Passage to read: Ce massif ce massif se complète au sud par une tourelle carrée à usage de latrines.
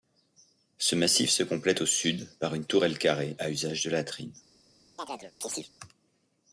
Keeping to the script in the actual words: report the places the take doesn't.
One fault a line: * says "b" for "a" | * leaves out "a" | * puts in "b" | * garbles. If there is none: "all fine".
* leaves out "ce massif"